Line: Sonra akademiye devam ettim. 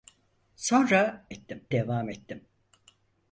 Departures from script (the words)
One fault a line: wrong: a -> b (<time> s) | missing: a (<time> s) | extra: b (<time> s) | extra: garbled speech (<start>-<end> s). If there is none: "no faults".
wrong: akademiye -> ettim (1.3 s)